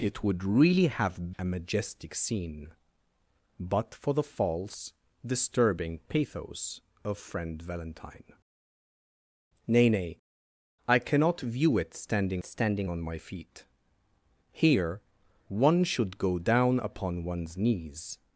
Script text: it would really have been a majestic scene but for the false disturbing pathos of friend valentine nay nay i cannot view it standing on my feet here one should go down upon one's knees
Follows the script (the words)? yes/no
no